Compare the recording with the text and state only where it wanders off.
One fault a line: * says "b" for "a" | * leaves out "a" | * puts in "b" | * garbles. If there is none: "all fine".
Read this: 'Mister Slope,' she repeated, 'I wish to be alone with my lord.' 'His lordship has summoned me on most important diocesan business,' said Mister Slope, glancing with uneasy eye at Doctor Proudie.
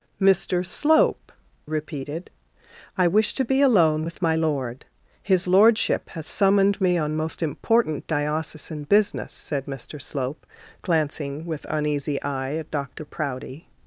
* leaves out "she"